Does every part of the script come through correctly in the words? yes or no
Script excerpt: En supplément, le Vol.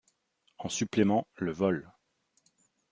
yes